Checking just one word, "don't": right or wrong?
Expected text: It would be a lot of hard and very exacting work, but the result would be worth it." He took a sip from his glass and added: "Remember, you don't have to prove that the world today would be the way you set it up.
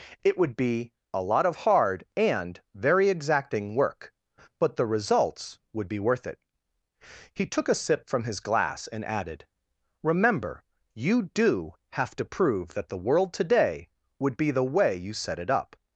wrong